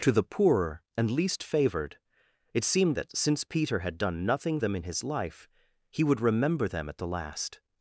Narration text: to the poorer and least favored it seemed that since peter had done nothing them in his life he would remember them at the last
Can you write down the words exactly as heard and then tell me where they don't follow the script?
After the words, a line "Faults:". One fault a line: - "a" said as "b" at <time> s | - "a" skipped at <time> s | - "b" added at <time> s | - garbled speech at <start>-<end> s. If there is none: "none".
to the poorer and least favored it seemed that since peter had done nothing them in his life he would remember them at the last
Faults:
none